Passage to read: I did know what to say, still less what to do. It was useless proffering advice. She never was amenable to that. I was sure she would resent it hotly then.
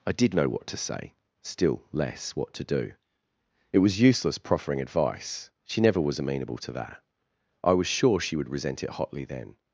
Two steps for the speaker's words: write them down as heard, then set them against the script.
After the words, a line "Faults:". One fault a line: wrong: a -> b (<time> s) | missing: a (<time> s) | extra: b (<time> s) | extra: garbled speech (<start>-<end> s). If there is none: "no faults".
I did know what to say, still less what to do. It was useless proffering advice. She never was amenable to that. I was sure she would resent it hotly then.
Faults:
no faults